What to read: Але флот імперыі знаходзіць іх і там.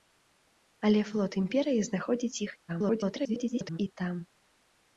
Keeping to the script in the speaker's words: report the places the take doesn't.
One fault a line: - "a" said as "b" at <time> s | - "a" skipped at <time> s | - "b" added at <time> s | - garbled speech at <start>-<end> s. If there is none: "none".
- garbled speech at 2.7-3.8 s